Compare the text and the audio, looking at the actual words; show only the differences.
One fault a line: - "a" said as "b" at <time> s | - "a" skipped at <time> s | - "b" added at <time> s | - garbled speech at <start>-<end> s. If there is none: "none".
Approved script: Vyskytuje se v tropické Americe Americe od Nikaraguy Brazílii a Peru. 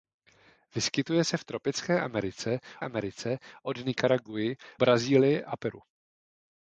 none